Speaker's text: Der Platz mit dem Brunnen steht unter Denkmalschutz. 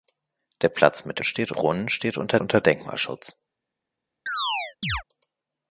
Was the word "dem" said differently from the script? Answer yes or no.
yes